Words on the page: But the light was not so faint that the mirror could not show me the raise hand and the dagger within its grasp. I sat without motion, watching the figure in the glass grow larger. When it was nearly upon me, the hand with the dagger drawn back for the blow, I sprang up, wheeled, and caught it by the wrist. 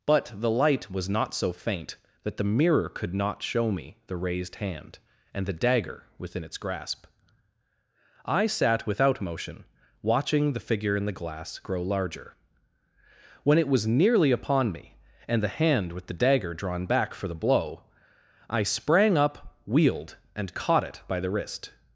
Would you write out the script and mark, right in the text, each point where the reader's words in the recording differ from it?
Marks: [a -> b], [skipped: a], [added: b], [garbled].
But the light was not so faint that the mirror could not show me the [raise -> raised] hand and the dagger within its grasp. I sat without motion, watching the figure in the glass grow larger. When it was nearly upon me, [added: and] the hand with the dagger drawn back for the blow, I sprang up, wheeled, and caught it by the wrist.